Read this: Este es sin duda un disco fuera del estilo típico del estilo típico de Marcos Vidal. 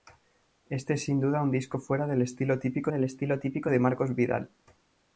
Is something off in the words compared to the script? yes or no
no